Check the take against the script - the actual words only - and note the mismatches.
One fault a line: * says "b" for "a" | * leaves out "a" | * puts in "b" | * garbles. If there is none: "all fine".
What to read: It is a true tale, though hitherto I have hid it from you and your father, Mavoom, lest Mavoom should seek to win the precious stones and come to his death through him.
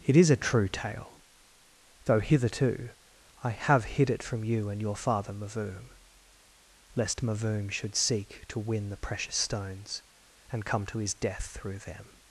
* says "them" for "him"